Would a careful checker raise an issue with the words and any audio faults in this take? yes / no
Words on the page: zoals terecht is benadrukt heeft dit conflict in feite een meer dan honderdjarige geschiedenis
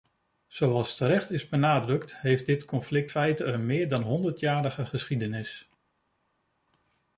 yes